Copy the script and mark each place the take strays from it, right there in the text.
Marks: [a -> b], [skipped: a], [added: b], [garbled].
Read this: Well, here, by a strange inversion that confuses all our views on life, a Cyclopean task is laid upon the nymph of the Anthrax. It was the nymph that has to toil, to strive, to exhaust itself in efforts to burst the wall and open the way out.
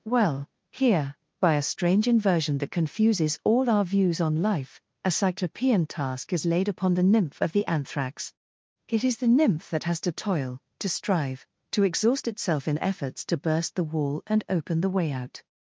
Well, here, by a strange inversion that confuses all our views on life, a Cyclopean task is laid upon the nymph of the Anthrax. It [was -> is] the nymph that has to toil, to strive, to exhaust itself in efforts to burst the wall and open the way out.